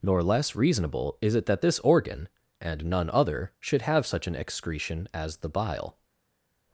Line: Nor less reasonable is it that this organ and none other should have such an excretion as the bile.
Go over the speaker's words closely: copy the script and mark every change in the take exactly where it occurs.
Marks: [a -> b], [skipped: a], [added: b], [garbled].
Nor less reasonable is it that this organ and none other should have such an excretion as the bile.